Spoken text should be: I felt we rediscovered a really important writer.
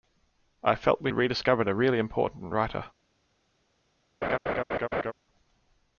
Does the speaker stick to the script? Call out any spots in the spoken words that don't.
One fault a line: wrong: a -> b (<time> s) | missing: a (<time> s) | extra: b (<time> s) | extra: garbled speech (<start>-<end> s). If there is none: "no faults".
no faults